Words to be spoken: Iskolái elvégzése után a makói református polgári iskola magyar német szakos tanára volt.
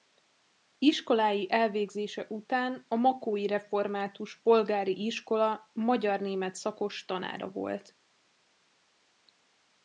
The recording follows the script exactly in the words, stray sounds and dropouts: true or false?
true